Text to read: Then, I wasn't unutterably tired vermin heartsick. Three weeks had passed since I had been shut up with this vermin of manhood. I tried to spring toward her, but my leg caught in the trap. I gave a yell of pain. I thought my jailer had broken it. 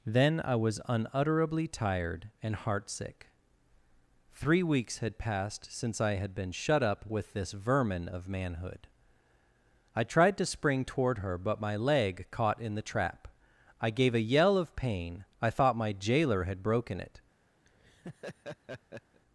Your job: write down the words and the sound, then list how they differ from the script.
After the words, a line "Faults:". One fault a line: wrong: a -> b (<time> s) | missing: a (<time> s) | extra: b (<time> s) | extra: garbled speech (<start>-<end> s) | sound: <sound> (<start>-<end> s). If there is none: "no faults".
Then, I was unutterably tired and heartsick. Three weeks had passed since I had been shut up with this vermin of manhood. I tried to spring toward her, but my leg caught in the trap. I gave a yell of pain. I thought my jailer had broken it.
Faults:
wrong: wasn't -> was (0.6 s)
wrong: vermin -> and (2.4 s)
sound: laugh (17.7-19.2 s)